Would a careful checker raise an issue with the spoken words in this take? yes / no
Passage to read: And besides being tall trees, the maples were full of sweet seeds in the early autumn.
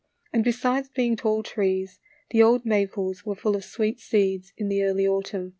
yes